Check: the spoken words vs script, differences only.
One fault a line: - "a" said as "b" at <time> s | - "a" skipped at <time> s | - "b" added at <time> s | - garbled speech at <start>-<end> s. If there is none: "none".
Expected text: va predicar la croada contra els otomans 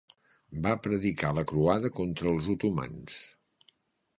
none